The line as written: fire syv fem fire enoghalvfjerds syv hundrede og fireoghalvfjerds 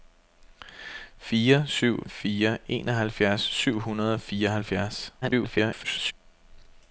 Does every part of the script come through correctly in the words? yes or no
no